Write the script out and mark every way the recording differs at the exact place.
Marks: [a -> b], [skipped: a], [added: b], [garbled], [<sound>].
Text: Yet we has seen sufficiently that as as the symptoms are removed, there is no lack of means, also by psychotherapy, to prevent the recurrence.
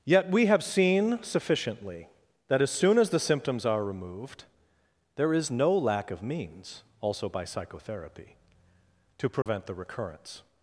Yet we [has -> have] seen sufficiently that as [added: soon] as the symptoms are removed, there is no lack of means, also by psychotherapy, to prevent [dropout] the recurrence.